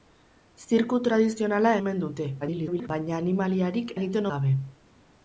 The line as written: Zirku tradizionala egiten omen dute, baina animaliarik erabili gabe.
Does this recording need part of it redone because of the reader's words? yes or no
yes